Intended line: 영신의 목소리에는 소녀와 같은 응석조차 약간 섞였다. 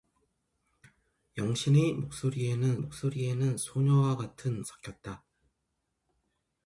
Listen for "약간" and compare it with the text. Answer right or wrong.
wrong